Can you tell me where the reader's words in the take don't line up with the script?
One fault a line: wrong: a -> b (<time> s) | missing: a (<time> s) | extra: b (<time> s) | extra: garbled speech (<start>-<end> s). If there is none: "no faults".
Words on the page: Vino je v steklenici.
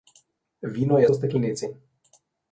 no faults